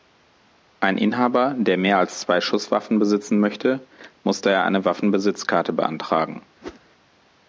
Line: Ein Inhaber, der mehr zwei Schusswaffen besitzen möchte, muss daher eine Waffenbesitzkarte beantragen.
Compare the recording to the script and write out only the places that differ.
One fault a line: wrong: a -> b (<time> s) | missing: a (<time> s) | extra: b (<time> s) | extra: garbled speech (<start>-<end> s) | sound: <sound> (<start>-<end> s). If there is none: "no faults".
extra: als (2.0 s)
sound: whoosh (6.6-6.8 s)